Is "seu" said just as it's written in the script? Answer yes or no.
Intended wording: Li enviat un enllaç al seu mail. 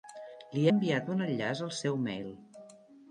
yes